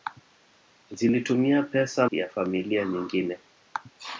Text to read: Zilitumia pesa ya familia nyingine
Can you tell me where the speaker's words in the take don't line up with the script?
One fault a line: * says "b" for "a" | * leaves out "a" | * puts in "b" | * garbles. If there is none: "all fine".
all fine